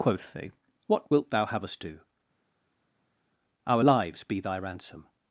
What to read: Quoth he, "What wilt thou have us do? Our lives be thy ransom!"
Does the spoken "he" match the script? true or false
false